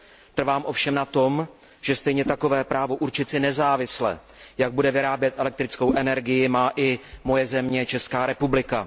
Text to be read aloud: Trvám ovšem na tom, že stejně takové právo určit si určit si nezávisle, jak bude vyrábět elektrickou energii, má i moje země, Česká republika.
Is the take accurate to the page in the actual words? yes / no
no